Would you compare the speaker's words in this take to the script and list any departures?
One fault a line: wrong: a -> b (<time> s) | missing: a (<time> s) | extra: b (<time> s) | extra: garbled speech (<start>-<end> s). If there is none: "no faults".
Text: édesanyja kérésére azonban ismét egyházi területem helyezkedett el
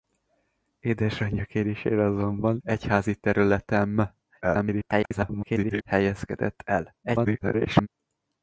missing: ismét (2.6 s)
extra: garbled speech (4.4-5.8 s)
extra: garbled speech (7.0-7.9 s)